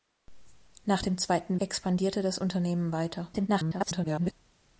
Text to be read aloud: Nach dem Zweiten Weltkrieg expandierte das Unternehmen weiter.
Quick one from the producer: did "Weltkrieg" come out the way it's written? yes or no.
no